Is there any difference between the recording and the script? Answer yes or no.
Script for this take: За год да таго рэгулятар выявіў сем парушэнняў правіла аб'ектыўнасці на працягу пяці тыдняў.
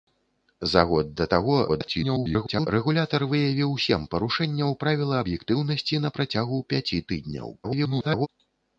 yes